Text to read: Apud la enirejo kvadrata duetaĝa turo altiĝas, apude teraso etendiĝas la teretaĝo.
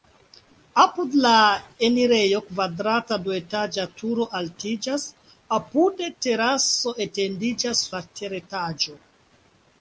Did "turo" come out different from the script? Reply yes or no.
no